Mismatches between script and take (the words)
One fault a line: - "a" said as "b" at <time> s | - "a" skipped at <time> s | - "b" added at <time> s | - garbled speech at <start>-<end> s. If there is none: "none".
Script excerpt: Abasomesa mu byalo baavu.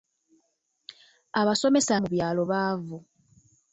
none